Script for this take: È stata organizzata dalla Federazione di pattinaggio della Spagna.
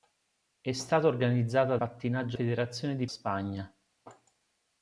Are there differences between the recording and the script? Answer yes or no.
yes